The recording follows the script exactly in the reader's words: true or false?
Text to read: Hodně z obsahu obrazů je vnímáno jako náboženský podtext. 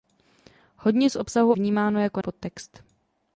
false